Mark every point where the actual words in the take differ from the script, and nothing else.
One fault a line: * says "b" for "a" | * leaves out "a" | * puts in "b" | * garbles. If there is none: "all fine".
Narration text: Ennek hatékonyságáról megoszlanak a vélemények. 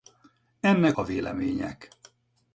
* leaves out "hatékonyságáról megoszlanak"